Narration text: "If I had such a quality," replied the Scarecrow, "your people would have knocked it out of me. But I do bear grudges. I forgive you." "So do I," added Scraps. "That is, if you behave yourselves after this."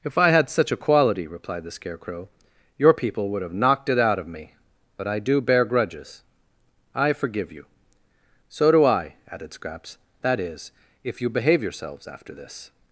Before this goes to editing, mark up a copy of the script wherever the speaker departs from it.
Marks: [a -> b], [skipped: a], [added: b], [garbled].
"If I had such a quality," replied the Scarecrow, "your people would have knocked it out of me. But I do bear grudges. I forgive you." "So do I," added Scraps. "That is, if you behave yourselves after this."